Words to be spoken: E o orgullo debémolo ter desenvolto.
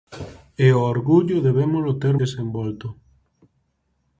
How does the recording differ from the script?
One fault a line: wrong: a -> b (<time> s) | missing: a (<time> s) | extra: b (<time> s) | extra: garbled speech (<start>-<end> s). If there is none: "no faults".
no faults